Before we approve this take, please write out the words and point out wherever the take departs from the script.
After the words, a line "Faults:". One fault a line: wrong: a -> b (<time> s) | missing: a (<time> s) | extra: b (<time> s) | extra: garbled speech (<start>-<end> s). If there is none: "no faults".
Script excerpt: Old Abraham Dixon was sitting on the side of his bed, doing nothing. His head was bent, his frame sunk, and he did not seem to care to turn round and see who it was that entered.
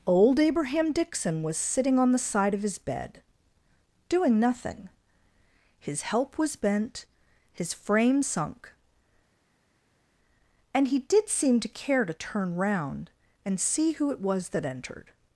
Old Abraham Dixon was sitting on the side of his bed, doing nothing. His help was bent, his frame sunk, and he did seem to care to turn round and see who it was that entered.
Faults:
wrong: head -> help (6.0 s)
missing: not (11.3 s)